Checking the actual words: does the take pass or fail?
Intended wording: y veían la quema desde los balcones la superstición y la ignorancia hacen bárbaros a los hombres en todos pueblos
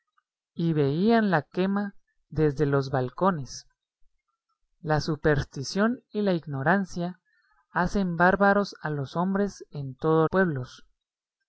pass